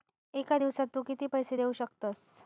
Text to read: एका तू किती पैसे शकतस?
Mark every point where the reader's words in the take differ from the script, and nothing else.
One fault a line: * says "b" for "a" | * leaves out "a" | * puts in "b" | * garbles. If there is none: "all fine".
* puts in "दिवसात"
* puts in "देऊ"